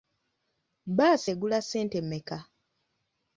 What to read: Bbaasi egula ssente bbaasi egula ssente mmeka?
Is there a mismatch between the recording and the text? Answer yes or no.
yes